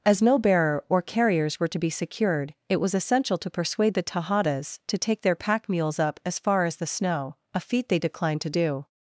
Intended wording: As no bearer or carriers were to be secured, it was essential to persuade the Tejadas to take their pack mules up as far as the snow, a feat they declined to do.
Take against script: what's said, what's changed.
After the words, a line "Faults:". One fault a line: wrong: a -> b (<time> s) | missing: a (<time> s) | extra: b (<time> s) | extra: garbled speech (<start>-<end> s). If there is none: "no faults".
As no bearer or carriers were to be secured, it was essential to persuade the Tejadas to take their pack mules up as far as the snow, a feat they declined to do.
Faults:
no faults